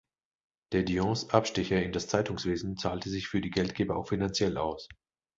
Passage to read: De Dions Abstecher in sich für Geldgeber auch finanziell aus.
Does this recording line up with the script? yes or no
no